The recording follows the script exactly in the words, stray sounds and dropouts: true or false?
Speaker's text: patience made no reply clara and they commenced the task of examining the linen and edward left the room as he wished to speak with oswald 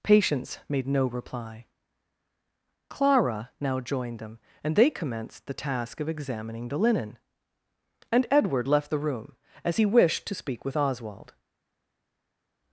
false